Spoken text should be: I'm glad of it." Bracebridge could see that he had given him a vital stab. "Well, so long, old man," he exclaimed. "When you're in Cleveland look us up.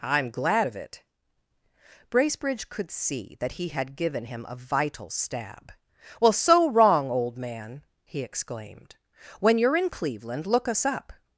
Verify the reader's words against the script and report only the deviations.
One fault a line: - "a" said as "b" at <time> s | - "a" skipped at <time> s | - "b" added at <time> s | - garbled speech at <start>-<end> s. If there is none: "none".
- "long" said as "wrong" at 6.7 s